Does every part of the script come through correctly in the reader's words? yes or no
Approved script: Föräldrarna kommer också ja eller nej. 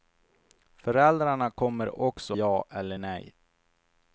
yes